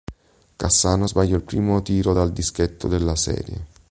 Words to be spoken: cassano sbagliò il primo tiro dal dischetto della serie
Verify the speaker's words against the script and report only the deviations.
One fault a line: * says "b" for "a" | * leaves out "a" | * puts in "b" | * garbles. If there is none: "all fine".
all fine